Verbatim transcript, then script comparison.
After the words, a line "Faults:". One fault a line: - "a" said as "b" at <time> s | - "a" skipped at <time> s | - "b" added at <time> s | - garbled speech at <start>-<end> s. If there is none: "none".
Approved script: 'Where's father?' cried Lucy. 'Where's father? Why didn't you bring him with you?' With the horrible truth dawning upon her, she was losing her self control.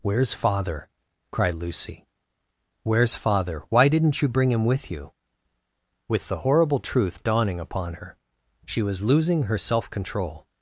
'Where's father?' cried Lucy. 'Where's father? Why didn't you bring him with you?' With the horrible truth dawning upon her, she was losing her self control.
Faults:
none